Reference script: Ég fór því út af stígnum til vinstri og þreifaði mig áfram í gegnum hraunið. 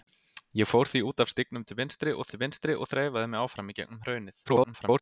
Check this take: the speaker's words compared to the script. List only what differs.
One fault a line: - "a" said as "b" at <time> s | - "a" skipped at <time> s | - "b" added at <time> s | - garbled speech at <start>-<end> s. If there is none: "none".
- "til vinstri og" added at 2.3 s
- garbled speech at 4.5-5.0 s